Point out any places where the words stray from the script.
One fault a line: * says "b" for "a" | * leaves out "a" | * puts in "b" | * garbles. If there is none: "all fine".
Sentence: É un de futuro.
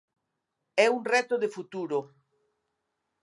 * puts in "reto"